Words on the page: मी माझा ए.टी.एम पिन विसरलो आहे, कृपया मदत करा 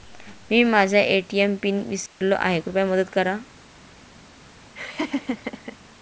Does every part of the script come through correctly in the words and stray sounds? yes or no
no